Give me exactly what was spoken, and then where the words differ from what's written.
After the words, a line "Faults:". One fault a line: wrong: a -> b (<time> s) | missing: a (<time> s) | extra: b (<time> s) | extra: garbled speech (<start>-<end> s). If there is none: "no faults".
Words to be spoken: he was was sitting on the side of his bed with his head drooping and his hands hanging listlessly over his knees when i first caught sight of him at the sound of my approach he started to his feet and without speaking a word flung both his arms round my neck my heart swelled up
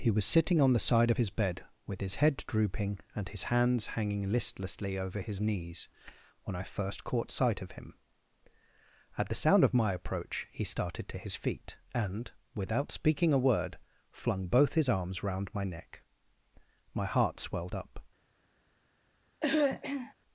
he was sitting on the side of his bed with his head drooping and his hands hanging listlessly over his knees when i first caught sight of him at the sound of my approach he started to his feet and without speaking a word flung both his arms round my neck my heart swelled up
Faults:
missing: was (0.2 s)